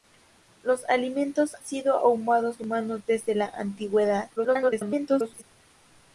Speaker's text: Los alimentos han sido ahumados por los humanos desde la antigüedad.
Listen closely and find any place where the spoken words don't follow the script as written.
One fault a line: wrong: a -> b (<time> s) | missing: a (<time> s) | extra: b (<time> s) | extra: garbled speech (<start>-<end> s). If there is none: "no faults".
missing: han (1.6 s)
missing: por los (2.6 s)
extra: garbled speech (4.4-5.4 s)